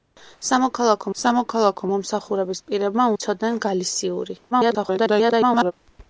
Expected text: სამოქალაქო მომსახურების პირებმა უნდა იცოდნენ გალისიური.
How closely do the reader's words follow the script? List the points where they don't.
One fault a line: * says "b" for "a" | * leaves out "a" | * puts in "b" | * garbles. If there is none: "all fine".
* puts in "სამოქალაქო"
* leaves out "უნდა"
* garbles